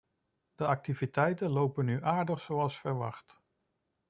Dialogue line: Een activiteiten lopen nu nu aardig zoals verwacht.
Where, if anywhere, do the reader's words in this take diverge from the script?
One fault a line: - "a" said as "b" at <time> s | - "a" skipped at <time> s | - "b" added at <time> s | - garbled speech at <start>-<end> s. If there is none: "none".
- "Een" said as "De" at 0.6 s
- "nu" skipped at 2.0 s